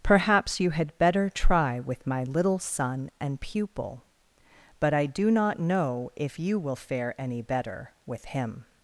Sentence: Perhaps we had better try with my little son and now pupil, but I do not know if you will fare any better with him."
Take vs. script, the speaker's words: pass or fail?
fail